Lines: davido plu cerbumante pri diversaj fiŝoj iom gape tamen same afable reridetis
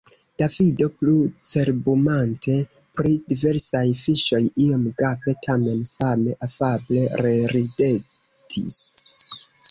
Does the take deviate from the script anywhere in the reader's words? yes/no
no